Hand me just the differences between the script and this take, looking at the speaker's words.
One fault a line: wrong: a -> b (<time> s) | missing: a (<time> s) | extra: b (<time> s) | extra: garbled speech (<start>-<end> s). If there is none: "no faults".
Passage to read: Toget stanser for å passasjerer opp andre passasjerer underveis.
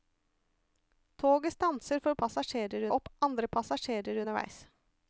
no faults